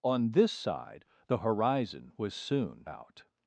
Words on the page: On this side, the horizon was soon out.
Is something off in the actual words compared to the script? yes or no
no